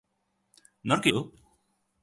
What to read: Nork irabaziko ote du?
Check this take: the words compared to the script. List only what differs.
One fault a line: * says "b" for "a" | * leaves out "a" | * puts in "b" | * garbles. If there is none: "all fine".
* leaves out "irabaziko ote"